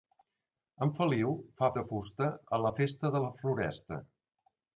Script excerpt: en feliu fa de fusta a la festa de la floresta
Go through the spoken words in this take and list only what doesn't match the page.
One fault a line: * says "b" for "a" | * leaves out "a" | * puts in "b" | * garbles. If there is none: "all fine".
all fine